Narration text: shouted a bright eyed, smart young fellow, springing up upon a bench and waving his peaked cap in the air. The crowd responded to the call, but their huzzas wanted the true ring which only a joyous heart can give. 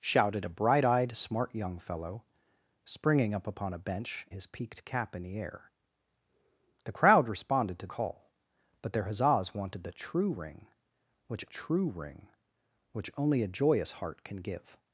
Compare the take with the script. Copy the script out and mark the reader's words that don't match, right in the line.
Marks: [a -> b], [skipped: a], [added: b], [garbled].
shouted a bright eyed, smart young fellow, springing up upon a bench [skipped: and waving] his peaked cap in the air. The crowd responded to [skipped: the] call, but their huzzas wanted the true ring which [added: true ring which] only a joyous heart can give.